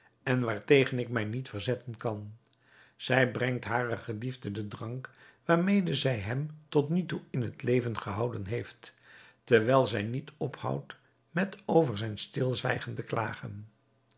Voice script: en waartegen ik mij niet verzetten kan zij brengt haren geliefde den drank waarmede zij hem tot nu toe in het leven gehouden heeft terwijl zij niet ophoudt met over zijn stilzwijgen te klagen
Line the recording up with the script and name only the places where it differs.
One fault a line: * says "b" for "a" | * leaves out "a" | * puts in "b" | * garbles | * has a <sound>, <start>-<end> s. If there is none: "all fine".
all fine